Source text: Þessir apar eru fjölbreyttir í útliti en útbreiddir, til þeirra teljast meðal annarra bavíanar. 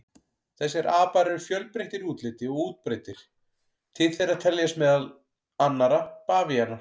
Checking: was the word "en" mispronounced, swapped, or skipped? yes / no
yes